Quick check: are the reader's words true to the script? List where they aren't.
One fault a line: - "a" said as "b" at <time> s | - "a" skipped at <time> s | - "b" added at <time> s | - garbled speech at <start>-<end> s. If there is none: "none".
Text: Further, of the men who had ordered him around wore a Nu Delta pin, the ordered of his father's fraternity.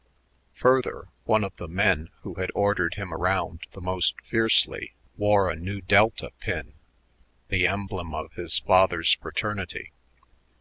- "one" added at 1.3 s
- "the most fiercely" added at 3.7 s
- "ordered" said as "emblem" at 7.7 s